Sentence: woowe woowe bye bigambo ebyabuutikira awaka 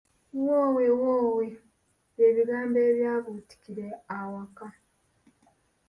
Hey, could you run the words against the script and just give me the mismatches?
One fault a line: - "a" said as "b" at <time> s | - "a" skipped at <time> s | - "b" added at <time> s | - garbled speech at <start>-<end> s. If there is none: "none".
none